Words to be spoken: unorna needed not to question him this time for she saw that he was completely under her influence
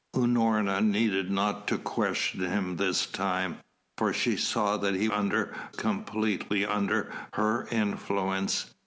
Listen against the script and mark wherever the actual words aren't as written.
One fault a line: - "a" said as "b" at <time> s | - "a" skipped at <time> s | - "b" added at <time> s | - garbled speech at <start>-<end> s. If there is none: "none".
- "was" said as "under" at 5.1 s